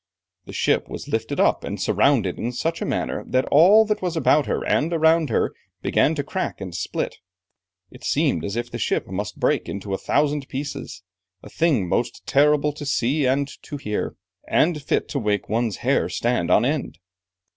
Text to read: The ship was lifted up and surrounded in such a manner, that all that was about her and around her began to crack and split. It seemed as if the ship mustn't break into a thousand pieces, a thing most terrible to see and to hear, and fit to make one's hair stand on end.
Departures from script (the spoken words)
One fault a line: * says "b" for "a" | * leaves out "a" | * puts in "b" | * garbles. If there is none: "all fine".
* says "must" for "mustn't"